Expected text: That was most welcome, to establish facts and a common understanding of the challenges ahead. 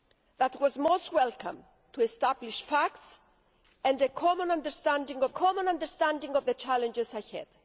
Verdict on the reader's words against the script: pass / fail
fail